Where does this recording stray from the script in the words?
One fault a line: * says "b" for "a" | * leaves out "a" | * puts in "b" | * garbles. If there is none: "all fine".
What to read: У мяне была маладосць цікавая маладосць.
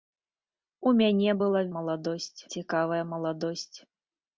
all fine